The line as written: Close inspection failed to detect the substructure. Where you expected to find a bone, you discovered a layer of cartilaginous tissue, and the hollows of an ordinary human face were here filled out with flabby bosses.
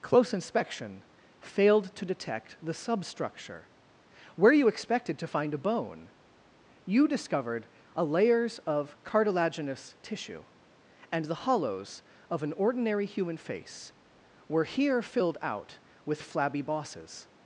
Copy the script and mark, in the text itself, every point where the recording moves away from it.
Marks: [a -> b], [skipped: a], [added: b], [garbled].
Close inspection failed to detect the substructure. Where you expected to find a bone, you discovered a [layer -> layers] of cartilaginous tissue, and the hollows of an ordinary human face were here filled out with flabby bosses.